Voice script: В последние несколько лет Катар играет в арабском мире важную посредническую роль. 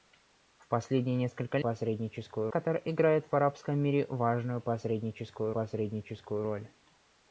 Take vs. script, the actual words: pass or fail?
fail